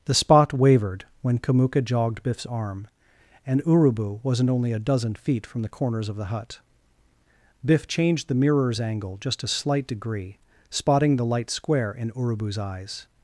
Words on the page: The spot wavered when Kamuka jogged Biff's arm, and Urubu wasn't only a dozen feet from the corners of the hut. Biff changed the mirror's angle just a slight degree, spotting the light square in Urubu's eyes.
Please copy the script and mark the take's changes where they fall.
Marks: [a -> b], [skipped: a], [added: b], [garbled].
The spot wavered when Kamuka jogged Biff's arm, and Urubu wasn't only a dozen feet from the corners of the hut. Biff changed the mirror's angle just a slight degree, spotting the light square in Urubu's eyes.